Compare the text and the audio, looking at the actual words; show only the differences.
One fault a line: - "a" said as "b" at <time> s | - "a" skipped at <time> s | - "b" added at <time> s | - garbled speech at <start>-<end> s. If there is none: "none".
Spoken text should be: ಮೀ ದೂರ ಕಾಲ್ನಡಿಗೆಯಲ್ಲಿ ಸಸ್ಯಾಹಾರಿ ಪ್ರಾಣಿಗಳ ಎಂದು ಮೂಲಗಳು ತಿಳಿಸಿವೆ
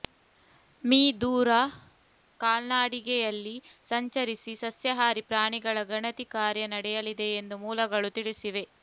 - "ಸಂಚರಿಸಿ" added at 3.8 s
- "ಗಣತಿ ಕಾರ್ಯ ನಡೆಯಲಿದೆ" added at 5.9 s